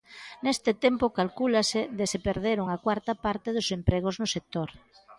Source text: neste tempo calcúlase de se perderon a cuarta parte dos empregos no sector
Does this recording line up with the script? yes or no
yes